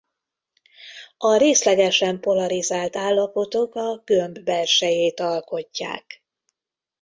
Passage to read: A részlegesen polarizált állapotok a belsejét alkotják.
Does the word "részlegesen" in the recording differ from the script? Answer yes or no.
no